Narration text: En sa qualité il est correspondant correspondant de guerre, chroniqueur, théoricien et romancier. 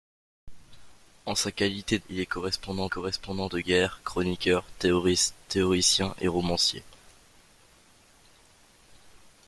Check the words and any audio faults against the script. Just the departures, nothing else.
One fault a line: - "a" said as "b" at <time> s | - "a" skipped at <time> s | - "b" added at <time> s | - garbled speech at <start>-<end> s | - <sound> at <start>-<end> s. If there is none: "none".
none